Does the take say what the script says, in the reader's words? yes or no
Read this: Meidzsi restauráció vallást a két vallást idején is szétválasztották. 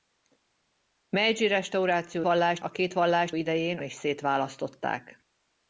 yes